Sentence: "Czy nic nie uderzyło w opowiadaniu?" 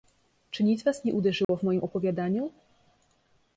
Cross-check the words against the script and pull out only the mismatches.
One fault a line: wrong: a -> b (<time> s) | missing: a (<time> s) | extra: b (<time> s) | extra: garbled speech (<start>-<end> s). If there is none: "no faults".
extra: was (0.8 s)
extra: moim (1.6 s)